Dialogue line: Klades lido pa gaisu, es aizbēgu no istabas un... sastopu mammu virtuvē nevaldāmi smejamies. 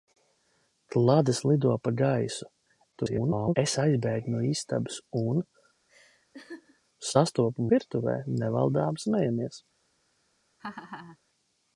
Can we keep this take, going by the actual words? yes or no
no